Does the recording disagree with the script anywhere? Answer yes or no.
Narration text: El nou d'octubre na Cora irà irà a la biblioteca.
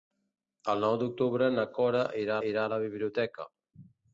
no